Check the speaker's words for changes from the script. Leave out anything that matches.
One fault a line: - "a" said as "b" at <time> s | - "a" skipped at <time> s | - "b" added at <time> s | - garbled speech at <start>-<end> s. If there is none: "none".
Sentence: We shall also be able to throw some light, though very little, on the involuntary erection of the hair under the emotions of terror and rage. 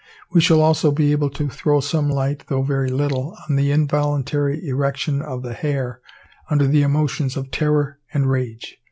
none